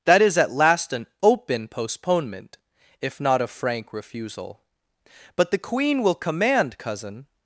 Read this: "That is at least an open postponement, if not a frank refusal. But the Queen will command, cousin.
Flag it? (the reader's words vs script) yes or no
yes